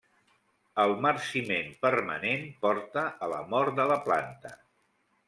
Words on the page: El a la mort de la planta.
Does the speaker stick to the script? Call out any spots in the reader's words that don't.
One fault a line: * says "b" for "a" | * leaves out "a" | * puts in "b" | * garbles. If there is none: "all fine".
* puts in "marciment permanent porta"